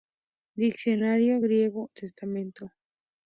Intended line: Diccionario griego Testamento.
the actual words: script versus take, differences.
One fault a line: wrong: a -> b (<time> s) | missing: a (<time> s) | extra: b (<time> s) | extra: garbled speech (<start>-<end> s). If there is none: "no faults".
no faults